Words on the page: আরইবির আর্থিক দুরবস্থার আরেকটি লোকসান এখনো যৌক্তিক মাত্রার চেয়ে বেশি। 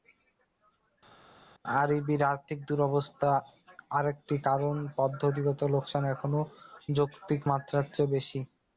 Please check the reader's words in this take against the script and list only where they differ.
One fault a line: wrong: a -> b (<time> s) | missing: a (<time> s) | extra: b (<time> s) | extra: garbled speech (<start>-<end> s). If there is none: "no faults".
extra: কারণ পদ্ধতিগত (4.5 s)